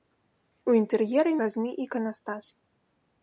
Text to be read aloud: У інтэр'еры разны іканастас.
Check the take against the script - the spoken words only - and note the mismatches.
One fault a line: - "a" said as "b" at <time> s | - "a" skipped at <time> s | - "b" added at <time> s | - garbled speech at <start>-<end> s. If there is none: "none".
none